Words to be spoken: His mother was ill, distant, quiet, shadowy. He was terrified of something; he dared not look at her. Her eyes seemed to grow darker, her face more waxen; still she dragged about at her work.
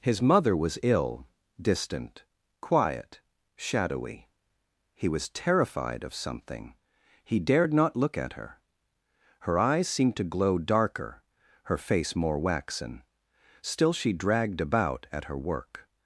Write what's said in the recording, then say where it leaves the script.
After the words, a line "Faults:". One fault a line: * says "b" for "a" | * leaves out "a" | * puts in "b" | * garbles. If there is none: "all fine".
His mother was ill, distant, quiet, shadowy. He was terrified of something; he dared not look at her. Her eyes seemed to glow darker, her face more waxen; still she dragged about at her work.
Faults:
* says "glow" for "grow"